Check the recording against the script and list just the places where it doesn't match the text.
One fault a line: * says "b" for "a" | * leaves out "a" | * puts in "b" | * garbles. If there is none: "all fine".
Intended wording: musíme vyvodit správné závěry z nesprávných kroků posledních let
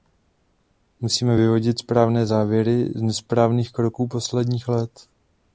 all fine